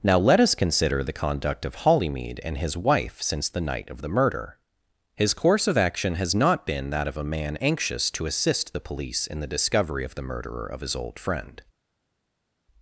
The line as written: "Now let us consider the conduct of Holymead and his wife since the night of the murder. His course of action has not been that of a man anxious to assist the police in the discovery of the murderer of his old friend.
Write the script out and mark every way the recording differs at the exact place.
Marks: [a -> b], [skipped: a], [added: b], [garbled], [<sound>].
"Now let us consider the conduct of Holymead and his wife since the night of the murder. His course of action has not been that of a man anxious to assist the police in the discovery of the murderer of his old friend.